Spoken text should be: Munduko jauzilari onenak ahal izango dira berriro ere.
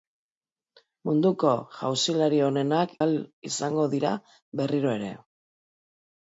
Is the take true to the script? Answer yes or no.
yes